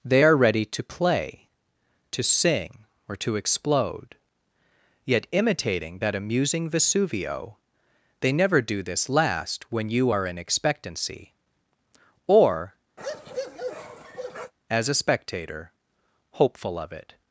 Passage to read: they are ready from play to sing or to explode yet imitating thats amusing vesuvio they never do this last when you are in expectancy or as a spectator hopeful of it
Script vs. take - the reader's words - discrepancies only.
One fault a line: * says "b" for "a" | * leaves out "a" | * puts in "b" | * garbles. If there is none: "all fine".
* says "to" for "from"
* says "that" for "thats"